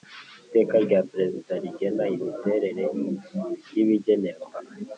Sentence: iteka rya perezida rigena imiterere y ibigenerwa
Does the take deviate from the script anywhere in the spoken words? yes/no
no